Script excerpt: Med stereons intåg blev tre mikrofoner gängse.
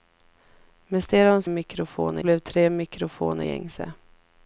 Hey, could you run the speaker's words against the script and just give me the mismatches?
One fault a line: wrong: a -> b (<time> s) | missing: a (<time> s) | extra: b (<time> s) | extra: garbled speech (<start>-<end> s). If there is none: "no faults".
wrong: intåg -> mikrofoner (1.5 s)